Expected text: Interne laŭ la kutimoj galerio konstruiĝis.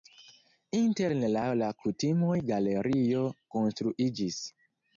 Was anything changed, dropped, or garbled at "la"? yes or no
no